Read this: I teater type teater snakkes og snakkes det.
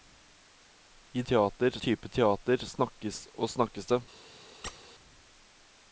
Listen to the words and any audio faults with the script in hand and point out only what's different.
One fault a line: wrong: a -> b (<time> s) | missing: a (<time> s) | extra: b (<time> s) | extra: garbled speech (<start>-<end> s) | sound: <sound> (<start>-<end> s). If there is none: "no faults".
sound: squeak (4.6-4.8 s)